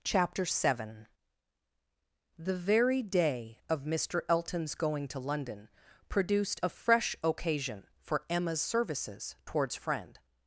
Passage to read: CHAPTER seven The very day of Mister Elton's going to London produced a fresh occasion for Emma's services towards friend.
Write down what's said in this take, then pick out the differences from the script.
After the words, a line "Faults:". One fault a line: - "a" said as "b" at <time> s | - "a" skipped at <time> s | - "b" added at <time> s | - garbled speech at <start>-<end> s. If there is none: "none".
CHAPTER seven The very day of Mister Elton's going to London produced a fresh occasion for Emma's services towards friend.
Faults:
none